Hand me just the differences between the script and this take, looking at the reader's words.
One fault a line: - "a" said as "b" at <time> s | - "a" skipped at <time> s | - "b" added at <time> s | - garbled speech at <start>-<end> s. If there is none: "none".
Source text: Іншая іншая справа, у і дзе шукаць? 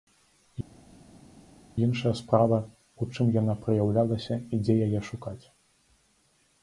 - "іншая" skipped at 2.1 s
- "чым яна праяўлялася" added at 3.1 s
- "яе" added at 4.9 s